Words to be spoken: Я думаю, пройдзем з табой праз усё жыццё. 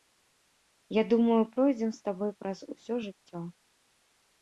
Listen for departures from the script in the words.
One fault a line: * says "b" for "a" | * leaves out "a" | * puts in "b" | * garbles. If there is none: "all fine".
all fine